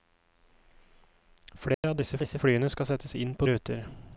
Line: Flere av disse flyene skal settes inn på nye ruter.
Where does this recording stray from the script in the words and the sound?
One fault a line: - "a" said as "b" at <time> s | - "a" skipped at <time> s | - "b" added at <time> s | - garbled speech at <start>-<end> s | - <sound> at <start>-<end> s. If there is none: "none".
- dropout at 1.7-1.8 s
- "disse" added at 2.2 s
- "nye" skipped at 3.5 s